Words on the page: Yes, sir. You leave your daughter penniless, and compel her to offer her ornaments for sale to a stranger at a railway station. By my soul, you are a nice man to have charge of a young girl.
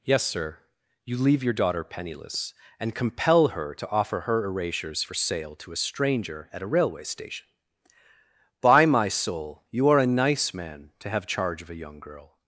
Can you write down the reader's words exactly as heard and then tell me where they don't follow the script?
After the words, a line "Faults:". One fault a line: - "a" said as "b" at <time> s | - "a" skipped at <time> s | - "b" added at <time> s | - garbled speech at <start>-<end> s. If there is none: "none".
Yes, sir. You leave your daughter penniless, and compel her to offer her erasures for sale to a stranger at a railway station. By my soul, you are a nice man to have charge of a young girl.
Faults:
- "ornaments" said as "erasures" at 4.5 s